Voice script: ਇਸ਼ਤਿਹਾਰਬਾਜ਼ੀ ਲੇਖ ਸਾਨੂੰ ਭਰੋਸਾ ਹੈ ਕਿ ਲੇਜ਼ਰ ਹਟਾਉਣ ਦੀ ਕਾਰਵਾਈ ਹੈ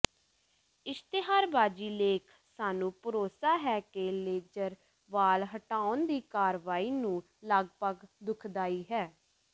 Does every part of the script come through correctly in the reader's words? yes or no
no